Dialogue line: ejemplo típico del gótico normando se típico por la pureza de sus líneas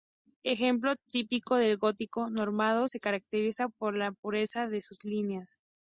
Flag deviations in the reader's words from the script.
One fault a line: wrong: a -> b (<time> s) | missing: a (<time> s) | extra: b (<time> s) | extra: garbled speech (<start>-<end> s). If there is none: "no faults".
wrong: típico -> caracteriza (3.0 s)